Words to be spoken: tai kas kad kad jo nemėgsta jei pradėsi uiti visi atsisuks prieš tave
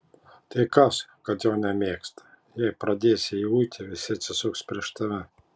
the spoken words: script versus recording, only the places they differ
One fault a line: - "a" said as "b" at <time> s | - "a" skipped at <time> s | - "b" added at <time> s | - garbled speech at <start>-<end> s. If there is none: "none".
- "kad" skipped at 1.4 s
- "jį" added at 3.4 s